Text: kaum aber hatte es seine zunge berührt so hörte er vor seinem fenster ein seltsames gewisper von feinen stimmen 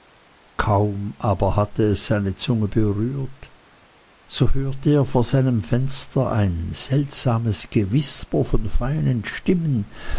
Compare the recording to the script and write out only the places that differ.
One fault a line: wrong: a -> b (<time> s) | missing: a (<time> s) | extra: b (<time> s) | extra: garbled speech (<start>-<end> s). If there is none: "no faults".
no faults